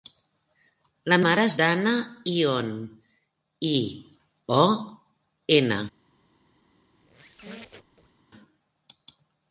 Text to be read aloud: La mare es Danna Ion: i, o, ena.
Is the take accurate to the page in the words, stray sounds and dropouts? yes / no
no